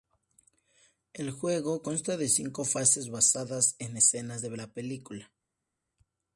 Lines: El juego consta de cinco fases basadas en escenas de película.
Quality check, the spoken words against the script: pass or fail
fail